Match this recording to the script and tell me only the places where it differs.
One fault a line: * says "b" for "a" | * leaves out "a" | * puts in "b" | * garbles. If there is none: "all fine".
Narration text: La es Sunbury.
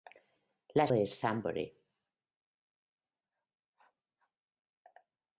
all fine